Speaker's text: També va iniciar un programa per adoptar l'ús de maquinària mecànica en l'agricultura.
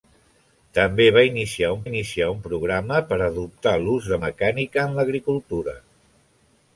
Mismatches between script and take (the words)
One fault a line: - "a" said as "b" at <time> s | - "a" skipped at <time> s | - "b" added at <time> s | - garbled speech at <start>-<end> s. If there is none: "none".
- "iniciar un" added at 1.8 s
- "maquinària" skipped at 4.2 s